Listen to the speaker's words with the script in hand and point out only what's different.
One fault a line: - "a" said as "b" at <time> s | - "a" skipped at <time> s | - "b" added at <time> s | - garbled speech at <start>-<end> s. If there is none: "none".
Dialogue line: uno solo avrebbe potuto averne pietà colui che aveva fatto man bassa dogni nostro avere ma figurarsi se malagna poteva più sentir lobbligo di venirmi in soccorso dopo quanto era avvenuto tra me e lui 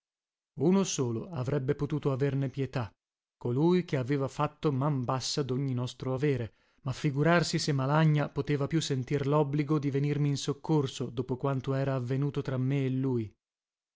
none